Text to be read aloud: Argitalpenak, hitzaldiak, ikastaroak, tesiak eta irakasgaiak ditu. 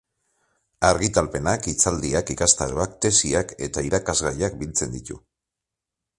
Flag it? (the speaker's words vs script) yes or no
yes